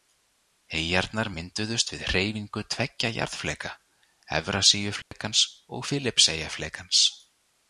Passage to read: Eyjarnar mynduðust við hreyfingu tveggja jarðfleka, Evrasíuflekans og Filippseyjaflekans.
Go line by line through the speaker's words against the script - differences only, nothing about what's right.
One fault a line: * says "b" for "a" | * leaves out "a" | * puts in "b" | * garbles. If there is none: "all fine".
all fine